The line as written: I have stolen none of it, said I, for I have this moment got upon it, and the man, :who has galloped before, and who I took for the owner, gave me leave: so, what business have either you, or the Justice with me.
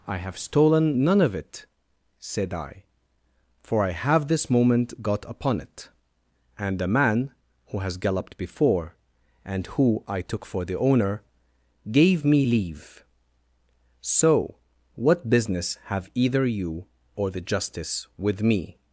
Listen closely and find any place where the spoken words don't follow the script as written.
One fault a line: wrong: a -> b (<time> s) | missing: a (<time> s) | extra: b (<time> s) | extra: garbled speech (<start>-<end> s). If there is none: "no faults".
no faults